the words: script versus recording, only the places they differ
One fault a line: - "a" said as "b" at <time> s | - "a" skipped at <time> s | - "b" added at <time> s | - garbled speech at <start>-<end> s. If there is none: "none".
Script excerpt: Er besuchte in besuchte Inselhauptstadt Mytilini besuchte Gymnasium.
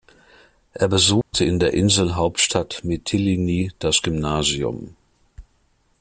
- "besuchte" said as "der" at 1.6 s
- "besuchte" said as "das" at 3.8 s